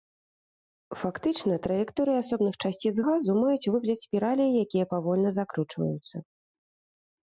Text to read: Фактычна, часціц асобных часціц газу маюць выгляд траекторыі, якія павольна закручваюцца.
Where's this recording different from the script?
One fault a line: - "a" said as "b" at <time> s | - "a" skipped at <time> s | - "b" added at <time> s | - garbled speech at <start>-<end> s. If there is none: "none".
- "часціц" said as "траекторыі" at 1.7 s
- "траекторыі" said as "спіралей" at 4.1 s